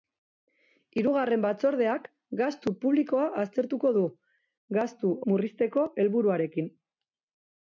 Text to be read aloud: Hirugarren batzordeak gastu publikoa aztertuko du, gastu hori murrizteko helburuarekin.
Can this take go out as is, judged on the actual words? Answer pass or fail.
fail